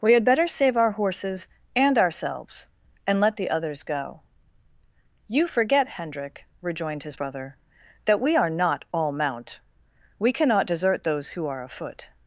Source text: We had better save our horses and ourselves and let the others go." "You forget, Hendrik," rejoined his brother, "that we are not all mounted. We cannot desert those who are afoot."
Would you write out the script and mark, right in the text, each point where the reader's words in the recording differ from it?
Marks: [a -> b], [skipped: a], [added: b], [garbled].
We had better save our horses and ourselves and let the others go." "You forget, Hendrik," rejoined his brother, "that we are not all [mounted. -> mount] We cannot desert those who are afoot."